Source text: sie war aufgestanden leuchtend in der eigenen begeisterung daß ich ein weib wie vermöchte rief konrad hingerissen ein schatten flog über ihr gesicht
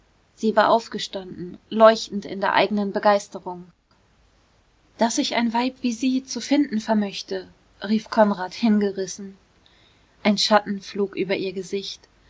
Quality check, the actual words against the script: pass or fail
fail